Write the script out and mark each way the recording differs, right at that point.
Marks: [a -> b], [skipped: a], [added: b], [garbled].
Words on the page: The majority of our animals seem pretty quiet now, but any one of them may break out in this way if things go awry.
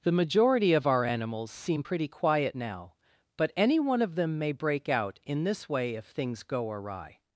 The majority of our animals seem pretty quiet now, but any one of them may break out in this way if things go awry.